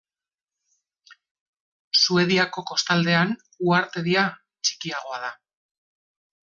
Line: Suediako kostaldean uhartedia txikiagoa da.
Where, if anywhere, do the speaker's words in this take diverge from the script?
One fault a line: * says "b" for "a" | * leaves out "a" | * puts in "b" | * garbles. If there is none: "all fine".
all fine